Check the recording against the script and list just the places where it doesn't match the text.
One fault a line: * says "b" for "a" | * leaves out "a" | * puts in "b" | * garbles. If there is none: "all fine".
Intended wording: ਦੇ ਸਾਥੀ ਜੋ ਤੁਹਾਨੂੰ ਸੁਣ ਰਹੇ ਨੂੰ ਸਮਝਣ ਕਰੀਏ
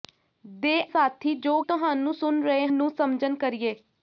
all fine